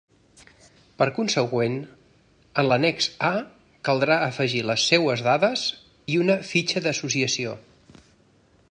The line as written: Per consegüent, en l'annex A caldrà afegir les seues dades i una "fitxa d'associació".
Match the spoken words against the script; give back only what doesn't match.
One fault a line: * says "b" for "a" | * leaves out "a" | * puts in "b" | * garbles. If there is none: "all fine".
all fine